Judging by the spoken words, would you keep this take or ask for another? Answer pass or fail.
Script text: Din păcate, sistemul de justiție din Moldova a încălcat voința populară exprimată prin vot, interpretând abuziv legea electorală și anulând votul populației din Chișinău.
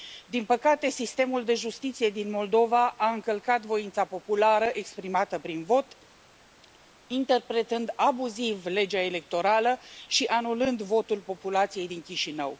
pass